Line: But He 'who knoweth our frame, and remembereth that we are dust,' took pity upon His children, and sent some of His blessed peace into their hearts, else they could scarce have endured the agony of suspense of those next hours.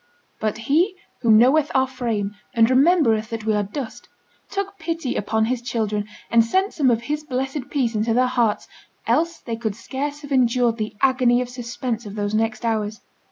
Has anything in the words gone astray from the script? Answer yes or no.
no